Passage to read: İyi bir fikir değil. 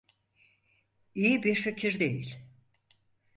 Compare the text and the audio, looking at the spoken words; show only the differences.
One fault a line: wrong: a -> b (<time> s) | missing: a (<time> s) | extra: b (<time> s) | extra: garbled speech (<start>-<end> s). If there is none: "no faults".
no faults